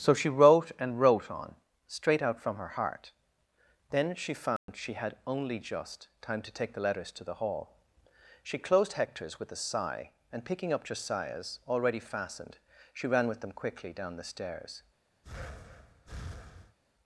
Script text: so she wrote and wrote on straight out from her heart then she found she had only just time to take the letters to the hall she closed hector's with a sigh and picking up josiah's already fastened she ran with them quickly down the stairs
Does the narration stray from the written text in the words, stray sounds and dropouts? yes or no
yes